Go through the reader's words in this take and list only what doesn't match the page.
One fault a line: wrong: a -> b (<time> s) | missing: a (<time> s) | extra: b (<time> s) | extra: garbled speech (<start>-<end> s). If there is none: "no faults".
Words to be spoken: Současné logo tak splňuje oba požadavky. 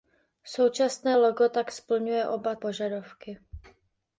no faults